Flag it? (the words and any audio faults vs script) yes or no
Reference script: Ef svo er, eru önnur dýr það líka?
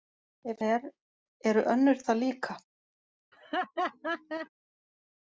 yes